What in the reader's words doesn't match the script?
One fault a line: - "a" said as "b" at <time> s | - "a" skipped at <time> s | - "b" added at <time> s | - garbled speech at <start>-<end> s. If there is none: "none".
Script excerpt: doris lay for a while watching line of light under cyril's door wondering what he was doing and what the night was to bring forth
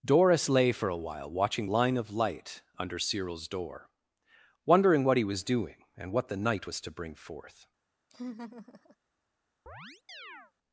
none